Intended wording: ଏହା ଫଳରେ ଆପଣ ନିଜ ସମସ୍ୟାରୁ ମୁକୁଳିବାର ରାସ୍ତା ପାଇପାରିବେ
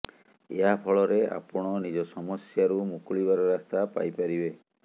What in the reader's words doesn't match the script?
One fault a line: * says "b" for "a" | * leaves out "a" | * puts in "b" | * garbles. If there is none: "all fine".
all fine